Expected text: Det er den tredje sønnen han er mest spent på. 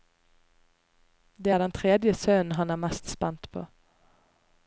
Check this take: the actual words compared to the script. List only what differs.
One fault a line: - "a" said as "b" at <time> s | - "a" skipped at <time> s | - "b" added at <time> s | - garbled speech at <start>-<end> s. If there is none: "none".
none